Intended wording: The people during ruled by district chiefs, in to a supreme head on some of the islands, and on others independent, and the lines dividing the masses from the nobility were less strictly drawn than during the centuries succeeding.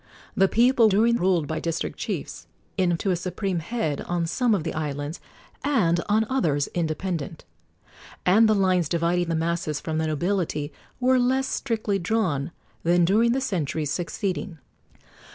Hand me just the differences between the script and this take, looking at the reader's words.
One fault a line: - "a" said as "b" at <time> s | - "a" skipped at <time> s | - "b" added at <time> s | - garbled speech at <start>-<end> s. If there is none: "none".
none